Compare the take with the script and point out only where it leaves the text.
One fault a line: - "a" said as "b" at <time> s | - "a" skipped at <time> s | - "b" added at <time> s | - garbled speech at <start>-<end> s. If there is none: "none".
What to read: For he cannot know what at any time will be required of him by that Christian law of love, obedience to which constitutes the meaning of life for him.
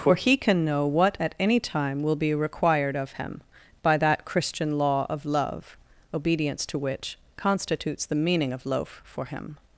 - "cannot" said as "can" at 0.3 s
- "life" said as "loaf" at 8.6 s